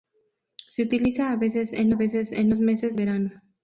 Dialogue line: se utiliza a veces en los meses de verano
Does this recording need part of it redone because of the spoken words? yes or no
yes